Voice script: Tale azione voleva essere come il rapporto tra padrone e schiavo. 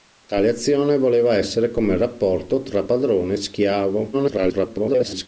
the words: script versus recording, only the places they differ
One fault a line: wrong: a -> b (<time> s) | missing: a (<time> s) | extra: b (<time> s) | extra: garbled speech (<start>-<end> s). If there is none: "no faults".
extra: garbled speech (4.1-5.3 s)